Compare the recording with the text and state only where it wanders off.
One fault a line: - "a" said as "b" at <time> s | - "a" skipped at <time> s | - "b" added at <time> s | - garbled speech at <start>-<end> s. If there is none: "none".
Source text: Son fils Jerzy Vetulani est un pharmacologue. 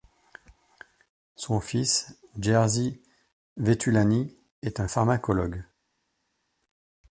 none